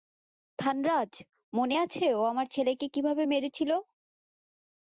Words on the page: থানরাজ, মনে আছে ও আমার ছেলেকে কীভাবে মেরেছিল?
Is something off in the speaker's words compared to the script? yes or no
no